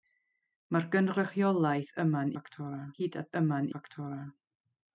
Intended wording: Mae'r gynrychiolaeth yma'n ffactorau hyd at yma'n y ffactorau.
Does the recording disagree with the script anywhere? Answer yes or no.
no